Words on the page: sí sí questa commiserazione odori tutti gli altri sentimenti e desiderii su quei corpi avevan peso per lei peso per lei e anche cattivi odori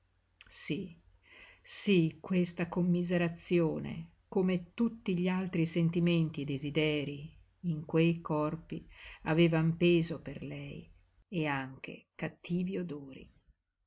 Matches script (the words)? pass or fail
fail